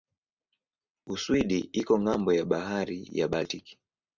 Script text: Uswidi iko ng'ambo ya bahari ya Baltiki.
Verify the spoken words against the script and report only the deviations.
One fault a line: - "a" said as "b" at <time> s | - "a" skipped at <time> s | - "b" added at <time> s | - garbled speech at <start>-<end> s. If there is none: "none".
none